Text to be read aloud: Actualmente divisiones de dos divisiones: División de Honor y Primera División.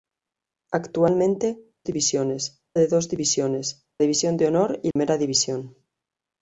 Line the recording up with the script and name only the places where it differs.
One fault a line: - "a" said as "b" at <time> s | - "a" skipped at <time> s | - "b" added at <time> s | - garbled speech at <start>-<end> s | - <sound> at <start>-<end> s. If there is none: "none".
- dropout at 4.9-5.0 s